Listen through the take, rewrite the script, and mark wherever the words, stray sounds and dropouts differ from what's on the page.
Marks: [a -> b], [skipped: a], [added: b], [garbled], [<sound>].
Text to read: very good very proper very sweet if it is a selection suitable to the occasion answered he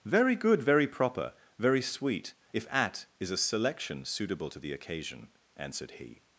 very good very proper very sweet if [it -> at] is a selection suitable to the occasion answered he